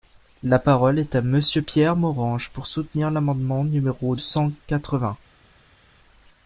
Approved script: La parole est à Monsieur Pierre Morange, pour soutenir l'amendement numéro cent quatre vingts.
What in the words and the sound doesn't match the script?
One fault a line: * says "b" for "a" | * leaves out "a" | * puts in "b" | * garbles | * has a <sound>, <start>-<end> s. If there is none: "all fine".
all fine